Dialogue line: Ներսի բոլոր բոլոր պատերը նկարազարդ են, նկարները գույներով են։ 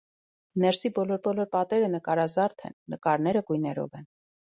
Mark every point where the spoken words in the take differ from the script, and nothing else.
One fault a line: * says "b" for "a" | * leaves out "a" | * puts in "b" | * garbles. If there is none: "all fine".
all fine